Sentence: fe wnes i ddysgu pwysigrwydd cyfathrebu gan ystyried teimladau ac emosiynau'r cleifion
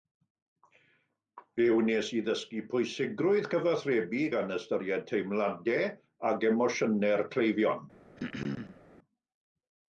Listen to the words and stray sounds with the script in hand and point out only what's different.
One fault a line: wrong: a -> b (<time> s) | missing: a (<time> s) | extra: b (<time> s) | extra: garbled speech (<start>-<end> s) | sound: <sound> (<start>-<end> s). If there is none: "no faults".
sound: throat clearing (8.2-8.8 s)